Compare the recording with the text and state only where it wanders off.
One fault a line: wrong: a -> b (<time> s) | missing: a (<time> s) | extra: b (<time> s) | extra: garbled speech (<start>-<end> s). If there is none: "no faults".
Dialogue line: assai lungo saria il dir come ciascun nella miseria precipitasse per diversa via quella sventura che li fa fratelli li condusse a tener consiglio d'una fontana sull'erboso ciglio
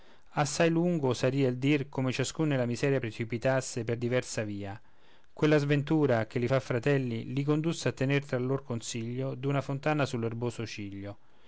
extra: tra lor (8.3 s)